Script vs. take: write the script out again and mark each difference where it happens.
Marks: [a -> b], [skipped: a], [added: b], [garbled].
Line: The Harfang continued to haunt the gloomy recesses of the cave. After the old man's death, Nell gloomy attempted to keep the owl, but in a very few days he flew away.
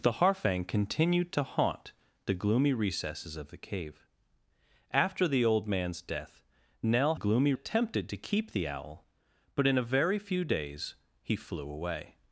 The Harfang continued to haunt the gloomy recesses of the cave. After the old man's death, Nell gloomy attempted to keep the owl, but in a very few days he flew away.